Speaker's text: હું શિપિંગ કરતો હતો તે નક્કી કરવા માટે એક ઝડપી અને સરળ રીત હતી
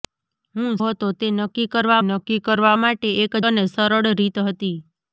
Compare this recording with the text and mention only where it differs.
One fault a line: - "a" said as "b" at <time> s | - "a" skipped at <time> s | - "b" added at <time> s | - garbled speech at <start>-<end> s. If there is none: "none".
- "શિપિંગ કરતો" skipped at 0.7 s
- "નક્કી કરવા" added at 2.1 s
- "ઝડપી" skipped at 3.3 s